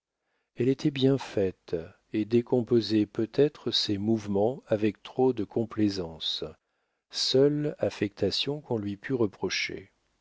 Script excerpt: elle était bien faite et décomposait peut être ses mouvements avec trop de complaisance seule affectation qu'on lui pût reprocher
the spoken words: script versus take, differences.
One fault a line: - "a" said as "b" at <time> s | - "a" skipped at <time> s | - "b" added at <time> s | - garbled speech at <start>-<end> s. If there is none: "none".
none